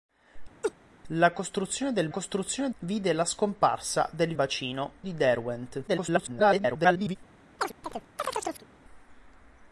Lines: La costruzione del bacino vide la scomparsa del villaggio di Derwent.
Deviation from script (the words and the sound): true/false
true